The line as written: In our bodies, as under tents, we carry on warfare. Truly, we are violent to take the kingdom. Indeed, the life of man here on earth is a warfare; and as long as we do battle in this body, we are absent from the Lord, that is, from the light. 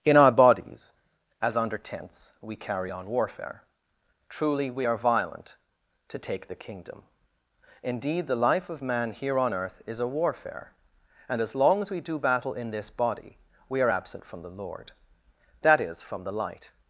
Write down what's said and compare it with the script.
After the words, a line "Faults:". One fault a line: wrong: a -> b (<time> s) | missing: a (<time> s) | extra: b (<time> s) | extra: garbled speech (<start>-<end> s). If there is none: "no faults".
In our bodies, as under tents, we carry on warfare. Truly, we are violent to take the kingdom. Indeed, the life of man here on earth is a warfare; and as long as we do battle in this body, we are absent from the Lord, that is, from the light.
Faults:
no faults